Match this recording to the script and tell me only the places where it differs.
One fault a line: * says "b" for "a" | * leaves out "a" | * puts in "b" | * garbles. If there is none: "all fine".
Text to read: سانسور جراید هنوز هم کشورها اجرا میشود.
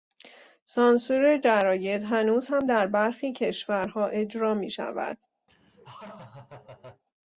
* puts in "در برخی"